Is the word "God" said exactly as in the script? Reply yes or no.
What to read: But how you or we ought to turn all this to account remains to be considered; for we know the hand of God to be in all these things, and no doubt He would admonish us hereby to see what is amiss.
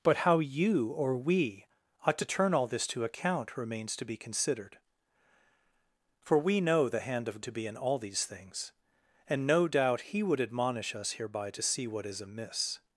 no